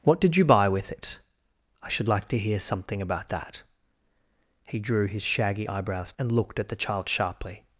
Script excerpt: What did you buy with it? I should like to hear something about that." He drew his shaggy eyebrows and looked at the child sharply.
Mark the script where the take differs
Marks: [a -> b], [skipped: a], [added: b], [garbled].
What did you buy with it? I should like to hear something about that." He drew his shaggy eyebrows and looked at the child sharply.